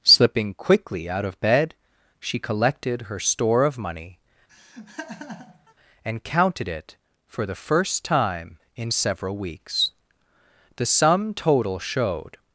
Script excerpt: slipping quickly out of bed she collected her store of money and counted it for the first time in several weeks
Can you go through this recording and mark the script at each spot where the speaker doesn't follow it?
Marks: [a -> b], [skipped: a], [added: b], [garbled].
slipping quickly out of bed she collected her store of money and counted it for the first time in several weeks [added: the sum total showed]